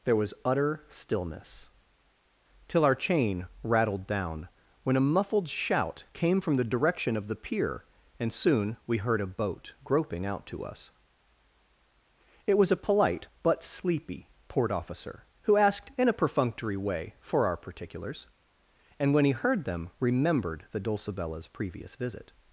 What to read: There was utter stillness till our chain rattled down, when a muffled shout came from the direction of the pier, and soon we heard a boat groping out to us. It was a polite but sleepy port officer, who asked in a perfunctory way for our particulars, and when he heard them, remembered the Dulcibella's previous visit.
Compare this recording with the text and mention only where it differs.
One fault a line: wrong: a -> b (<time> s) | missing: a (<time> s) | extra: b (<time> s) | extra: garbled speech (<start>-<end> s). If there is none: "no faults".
no faults